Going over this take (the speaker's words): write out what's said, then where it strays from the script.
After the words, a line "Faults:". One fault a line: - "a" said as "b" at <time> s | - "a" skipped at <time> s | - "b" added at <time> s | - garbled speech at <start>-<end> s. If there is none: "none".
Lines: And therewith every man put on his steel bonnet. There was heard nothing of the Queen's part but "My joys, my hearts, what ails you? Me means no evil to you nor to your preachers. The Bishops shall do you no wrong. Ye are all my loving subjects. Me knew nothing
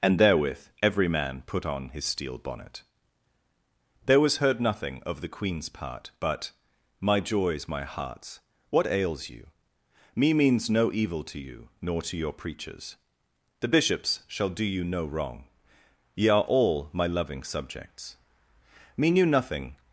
And therewith every man put on his steel bonnet. There was heard nothing of the Queen's part but "My joys, my hearts, what ails you? Me means no evil to you nor to your preachers. The Bishops shall do you no wrong. Ye are all my loving subjects. Me knew nothing
Faults:
none